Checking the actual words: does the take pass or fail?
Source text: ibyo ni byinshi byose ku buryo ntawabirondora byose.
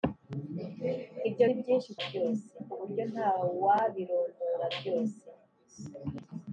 pass